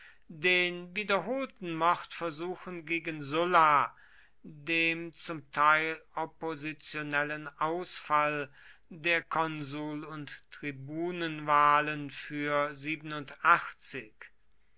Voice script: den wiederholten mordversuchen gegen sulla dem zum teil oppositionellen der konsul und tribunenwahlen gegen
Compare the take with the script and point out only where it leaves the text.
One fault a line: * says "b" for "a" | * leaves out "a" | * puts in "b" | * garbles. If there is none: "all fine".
* puts in "ausfall"
* says "für" for "gegen"